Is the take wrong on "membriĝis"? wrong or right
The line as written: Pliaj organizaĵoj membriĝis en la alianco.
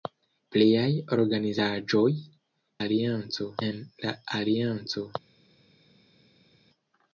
wrong